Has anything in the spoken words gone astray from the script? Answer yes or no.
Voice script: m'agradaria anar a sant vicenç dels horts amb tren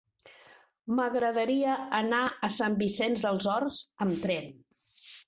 no